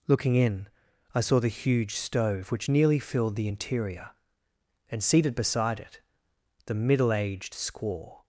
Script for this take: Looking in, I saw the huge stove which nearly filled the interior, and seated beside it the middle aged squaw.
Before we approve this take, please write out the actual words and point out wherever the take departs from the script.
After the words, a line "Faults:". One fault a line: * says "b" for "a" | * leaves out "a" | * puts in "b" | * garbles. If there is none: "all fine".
Looking in, I saw the huge stove which nearly filled the interior, and seated beside it the middle aged squaw.
Faults:
all fine